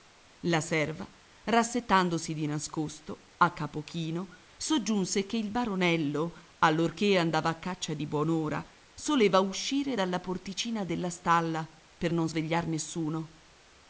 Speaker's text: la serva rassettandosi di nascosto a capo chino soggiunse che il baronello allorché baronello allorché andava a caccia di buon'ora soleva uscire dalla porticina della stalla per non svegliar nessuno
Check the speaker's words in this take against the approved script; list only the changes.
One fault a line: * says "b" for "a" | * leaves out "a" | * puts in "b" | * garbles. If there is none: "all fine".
* leaves out "baronello allorché"